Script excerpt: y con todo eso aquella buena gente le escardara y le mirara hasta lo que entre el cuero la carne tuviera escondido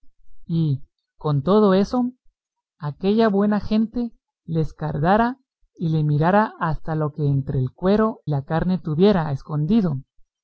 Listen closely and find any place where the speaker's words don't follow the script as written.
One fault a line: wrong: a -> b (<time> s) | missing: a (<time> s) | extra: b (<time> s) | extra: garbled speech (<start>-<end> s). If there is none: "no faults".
no faults